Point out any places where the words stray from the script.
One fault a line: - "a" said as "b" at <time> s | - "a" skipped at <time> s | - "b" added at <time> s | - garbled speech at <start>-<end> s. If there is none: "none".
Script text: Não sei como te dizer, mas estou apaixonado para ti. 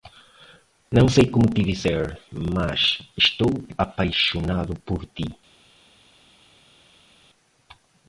- "para" said as "por" at 4.8 s